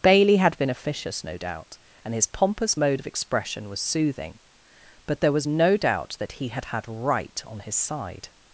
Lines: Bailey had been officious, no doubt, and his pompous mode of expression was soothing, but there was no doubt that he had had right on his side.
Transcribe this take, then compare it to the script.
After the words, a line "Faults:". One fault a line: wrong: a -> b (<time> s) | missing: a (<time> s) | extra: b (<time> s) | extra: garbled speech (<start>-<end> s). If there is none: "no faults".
Bailey had been officious, no doubt, and his pompous mode of expression was soothing, but there was no doubt that he had had right on his side.
Faults:
no faults